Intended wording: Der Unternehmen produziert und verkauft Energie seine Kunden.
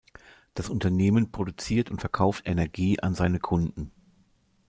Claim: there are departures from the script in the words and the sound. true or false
true